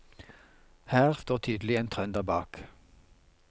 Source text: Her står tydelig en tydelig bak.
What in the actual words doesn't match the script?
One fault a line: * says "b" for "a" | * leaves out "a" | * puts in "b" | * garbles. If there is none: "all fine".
* says "trønder" for "tydelig"